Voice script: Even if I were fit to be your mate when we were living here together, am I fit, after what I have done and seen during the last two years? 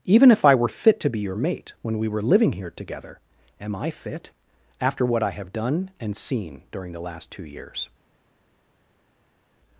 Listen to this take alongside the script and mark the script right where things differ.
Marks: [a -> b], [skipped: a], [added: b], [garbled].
Even if I were fit to be your mate when we were living here together, am I fit, after what I have done and seen during the last two years?